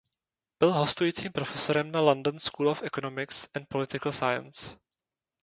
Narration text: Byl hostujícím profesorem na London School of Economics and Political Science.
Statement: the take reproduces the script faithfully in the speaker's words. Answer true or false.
true